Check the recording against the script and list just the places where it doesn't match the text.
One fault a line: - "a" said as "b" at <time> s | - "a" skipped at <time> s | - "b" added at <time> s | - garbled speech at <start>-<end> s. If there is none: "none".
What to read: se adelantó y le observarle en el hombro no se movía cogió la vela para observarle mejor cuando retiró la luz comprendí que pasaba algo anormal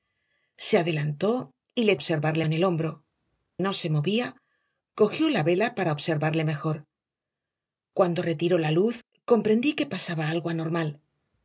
none